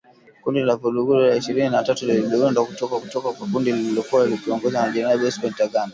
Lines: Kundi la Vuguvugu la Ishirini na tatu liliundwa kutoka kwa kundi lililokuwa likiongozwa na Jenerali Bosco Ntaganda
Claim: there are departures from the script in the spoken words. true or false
true